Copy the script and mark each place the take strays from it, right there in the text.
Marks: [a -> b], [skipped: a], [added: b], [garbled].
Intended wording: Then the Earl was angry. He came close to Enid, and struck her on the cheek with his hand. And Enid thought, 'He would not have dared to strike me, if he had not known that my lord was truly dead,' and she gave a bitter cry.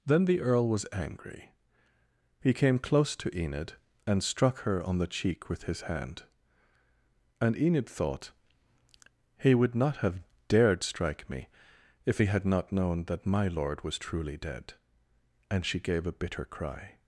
Then the Earl was angry. He came close to Enid, and struck her on the cheek with his hand. And Enid thought, 'He would not have dared [skipped: to] strike me, if he had not known that my lord was truly dead,' and she gave a bitter cry.